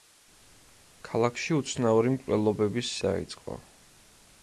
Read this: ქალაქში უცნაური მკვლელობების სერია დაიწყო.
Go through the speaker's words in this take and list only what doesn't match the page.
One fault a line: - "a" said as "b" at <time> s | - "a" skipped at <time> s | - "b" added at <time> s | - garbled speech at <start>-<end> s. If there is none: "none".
- "სერია" skipped at 3.0 s